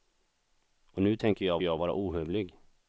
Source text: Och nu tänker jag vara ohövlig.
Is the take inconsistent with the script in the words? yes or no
yes